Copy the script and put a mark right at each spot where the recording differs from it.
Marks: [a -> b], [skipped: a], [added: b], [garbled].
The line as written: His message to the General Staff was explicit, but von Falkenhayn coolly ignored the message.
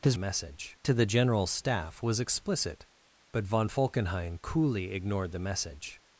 His message to the General Staff was explicit, but von Falkenhayn coolly ignored the message.